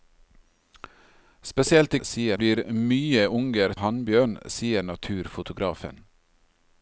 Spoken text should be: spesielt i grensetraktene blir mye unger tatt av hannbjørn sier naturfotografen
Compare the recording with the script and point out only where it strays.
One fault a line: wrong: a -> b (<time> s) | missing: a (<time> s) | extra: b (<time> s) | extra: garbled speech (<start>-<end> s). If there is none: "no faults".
wrong: grensetraktene -> sier (2.0 s)
missing: tatt av (3.7 s)